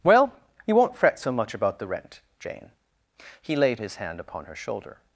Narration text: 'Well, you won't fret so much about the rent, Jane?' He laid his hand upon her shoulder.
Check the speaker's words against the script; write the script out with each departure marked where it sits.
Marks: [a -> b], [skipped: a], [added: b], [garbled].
'Well, you won't fret so much about the rent, Jane?' He laid his hand upon her shoulder.